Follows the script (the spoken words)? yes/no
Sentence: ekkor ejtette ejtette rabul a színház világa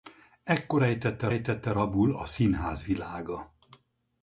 yes